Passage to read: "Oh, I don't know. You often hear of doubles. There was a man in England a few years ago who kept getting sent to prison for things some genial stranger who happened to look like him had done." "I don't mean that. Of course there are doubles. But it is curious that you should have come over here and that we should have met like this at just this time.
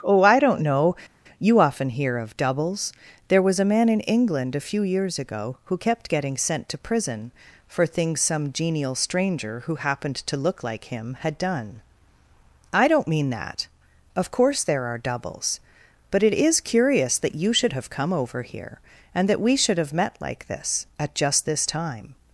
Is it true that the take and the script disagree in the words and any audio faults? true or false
false